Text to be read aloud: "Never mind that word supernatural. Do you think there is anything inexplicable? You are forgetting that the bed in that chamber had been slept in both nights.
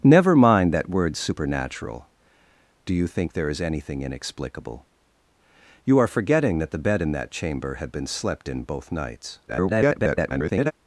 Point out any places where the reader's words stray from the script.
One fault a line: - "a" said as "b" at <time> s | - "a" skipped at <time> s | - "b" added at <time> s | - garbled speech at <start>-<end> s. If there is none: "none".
- garbled speech at 9.5-10.7 s